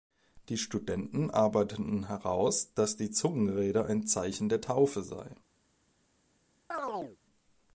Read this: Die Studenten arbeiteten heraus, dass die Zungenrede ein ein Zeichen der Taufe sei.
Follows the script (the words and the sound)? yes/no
no